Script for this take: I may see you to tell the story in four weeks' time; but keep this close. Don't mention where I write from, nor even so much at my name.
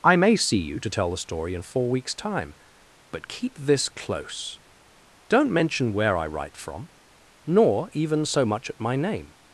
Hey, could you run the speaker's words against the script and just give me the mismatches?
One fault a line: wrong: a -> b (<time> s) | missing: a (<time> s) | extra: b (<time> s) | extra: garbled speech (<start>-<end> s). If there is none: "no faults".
no faults